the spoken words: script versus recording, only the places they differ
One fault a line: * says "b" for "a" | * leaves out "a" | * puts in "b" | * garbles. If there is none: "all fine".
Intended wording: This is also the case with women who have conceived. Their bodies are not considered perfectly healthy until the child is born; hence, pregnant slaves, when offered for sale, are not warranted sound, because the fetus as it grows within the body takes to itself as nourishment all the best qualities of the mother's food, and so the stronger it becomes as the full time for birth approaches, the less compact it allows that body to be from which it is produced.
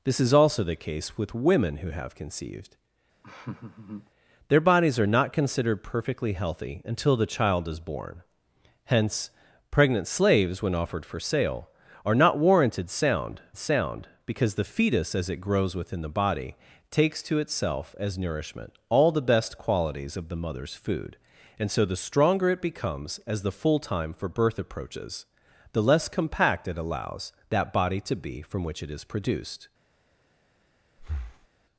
* puts in "sound"